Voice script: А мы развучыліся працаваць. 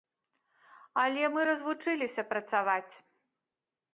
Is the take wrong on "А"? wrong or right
wrong